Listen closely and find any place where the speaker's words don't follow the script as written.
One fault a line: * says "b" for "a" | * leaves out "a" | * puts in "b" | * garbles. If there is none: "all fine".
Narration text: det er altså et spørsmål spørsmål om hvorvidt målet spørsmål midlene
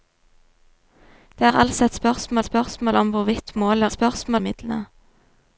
all fine